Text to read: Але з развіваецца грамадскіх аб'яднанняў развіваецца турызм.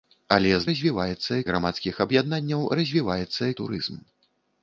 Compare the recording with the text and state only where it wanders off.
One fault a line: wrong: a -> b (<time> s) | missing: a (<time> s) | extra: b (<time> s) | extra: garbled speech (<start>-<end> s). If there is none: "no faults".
no faults